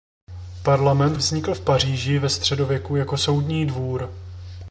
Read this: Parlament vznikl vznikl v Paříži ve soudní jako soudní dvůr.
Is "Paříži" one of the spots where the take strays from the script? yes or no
no